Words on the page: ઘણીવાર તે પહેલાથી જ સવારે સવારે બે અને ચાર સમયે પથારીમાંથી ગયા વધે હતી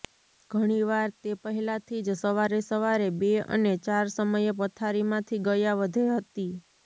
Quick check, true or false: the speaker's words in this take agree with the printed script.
true